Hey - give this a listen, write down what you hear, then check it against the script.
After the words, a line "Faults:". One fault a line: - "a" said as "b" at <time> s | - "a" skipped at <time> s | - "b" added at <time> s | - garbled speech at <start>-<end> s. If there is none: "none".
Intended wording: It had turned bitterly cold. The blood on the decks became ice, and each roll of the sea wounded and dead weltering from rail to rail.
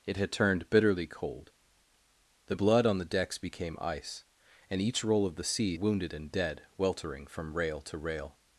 It had turned bitterly cold. The blood on the decks became ice, and each roll of the sea wounded and dead weltering from rail to rail.
Faults:
none